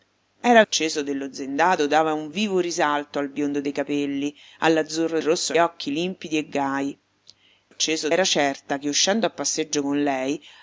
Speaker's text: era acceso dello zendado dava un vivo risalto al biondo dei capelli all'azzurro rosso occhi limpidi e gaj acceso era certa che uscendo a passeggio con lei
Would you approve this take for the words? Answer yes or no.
yes